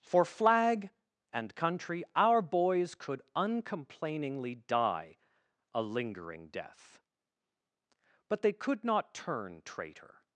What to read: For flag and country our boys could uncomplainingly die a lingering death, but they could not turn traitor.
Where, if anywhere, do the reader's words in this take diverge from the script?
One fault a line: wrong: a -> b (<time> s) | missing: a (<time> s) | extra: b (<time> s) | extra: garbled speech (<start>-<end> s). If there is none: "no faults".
no faults